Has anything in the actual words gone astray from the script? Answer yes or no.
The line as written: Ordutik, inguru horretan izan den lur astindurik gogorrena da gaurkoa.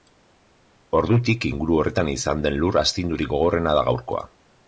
no